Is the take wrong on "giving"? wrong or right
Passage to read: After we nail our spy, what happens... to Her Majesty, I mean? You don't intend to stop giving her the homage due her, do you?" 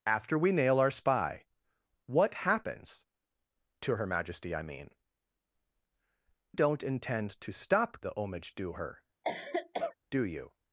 wrong